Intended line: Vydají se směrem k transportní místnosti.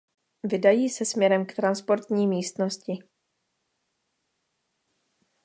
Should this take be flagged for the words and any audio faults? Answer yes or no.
no